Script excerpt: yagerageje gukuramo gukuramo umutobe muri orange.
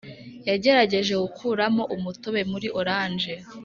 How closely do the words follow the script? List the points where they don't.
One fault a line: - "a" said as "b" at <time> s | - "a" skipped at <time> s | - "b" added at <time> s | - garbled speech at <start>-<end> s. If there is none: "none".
- "gukuramo" skipped at 1.8 s